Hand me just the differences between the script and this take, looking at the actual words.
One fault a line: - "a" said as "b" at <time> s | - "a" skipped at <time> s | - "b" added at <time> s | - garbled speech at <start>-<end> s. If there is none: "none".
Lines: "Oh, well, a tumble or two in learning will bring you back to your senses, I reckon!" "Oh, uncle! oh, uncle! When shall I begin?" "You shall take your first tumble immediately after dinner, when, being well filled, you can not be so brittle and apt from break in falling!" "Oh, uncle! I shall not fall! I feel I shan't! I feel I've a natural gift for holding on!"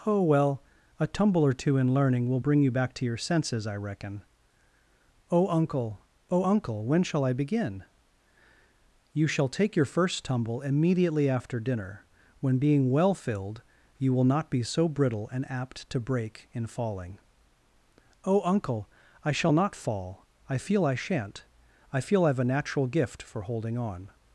- "can" said as "will" at 14.1 s
- "from" said as "to" at 15.9 s